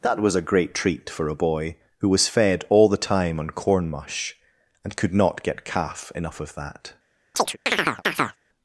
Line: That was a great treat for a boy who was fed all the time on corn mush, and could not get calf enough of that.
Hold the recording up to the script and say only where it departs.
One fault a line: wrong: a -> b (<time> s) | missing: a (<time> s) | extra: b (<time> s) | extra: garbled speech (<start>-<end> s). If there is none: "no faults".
no faults